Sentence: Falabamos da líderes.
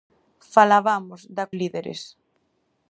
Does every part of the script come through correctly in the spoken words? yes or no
yes